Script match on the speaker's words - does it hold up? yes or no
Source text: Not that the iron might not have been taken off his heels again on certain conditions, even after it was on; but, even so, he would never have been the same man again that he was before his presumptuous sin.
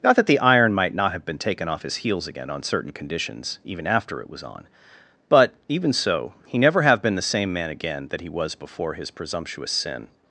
no